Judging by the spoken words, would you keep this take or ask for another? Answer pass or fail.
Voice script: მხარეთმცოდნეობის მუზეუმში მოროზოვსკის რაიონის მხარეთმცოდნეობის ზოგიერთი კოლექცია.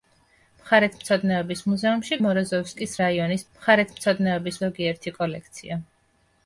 pass